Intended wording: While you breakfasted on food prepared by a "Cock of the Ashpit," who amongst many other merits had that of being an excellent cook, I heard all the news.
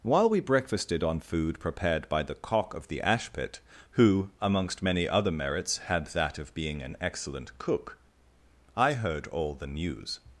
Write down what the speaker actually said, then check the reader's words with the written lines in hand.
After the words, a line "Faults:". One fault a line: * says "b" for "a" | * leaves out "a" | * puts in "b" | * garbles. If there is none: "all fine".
While we breakfasted on food prepared by the "Cock of the Ashpit," who amongst many other merits had that of being an excellent cook, I heard all the news.
Faults:
* says "we" for "you"
* says "the" for "a"